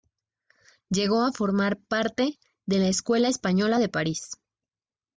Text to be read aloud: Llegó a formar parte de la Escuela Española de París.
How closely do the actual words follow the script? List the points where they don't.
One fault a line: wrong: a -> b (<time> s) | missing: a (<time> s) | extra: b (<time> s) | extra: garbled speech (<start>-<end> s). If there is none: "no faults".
no faults